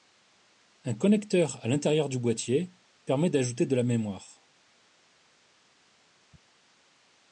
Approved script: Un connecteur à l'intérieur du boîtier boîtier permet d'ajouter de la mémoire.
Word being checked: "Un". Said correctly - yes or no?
yes